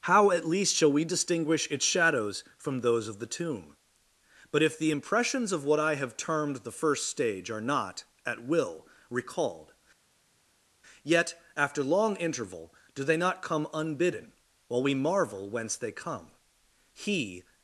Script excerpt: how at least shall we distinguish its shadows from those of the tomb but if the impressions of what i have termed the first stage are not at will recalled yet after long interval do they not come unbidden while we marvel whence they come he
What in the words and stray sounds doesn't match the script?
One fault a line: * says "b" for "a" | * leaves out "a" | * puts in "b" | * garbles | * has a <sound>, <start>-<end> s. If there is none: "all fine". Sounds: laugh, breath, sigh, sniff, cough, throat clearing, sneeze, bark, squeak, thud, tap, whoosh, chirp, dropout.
all fine